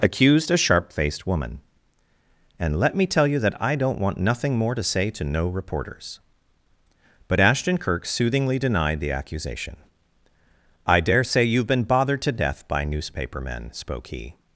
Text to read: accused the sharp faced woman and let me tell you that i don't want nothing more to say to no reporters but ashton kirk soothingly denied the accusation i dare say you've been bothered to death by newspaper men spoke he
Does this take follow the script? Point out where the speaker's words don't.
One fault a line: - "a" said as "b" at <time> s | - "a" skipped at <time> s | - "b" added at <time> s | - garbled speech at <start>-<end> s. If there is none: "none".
- "the" said as "a" at 0.5 s